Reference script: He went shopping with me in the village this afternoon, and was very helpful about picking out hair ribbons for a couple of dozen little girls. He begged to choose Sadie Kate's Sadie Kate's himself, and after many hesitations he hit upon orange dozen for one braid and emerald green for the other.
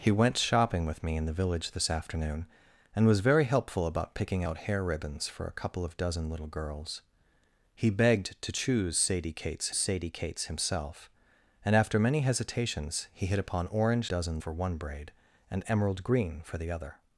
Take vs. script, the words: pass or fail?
pass